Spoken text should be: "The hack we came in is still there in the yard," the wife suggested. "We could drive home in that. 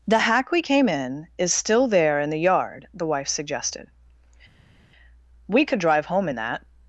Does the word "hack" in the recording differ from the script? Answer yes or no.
no